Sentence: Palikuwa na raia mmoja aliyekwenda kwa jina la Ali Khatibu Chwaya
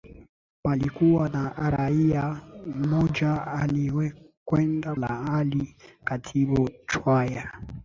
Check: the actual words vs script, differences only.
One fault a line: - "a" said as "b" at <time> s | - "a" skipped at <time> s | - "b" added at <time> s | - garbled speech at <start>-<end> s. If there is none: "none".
- "kwa jina" skipped at 4.9 s